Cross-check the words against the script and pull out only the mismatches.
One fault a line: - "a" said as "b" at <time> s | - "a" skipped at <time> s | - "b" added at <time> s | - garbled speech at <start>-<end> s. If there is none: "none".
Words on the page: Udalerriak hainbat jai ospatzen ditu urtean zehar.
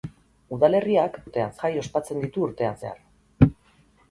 - "hainbat" said as "urtean" at 1.3 s